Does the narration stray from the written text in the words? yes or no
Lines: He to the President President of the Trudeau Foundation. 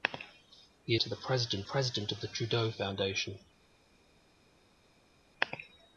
no